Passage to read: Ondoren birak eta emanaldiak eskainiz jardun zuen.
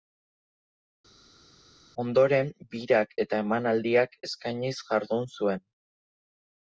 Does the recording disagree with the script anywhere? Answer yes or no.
no